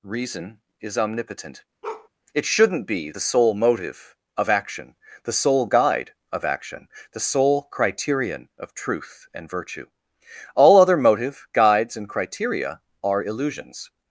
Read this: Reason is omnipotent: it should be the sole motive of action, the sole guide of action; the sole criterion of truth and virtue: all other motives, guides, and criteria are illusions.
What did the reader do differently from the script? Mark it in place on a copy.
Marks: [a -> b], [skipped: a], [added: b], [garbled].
Reason is omnipotent: it [should -> shouldn't] be the sole motive of action, the sole guide of action; the sole criterion of truth and virtue: all other [motives, -> motive] guides, and criteria are illusions.